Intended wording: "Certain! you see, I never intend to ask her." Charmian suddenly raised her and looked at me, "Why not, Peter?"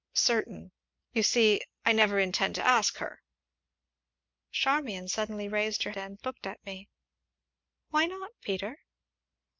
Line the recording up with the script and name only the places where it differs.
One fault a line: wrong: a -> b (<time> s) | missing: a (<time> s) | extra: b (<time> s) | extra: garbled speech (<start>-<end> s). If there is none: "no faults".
no faults